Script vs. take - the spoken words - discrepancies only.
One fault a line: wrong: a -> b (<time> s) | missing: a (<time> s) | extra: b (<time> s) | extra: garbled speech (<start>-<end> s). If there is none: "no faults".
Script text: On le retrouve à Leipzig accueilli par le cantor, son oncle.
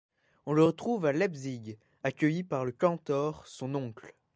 no faults